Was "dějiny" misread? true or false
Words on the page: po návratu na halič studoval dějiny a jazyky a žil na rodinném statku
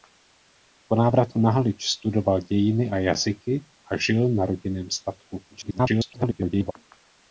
false